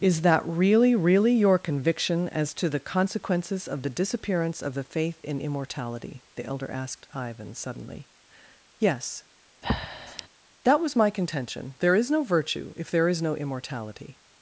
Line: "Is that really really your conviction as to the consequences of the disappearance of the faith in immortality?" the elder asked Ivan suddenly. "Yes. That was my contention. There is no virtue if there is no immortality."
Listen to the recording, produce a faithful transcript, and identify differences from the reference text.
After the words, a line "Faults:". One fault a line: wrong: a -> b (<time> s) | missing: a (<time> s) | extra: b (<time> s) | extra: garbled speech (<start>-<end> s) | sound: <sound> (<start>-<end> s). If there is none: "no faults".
"Is that really really your conviction as to the consequences of the disappearance of the faith in immortality?" the elder asked Ivan suddenly. "Yes. That was my contention. There is no virtue if there is no immortality."
Faults:
sound: breath (9.6-10.3 s)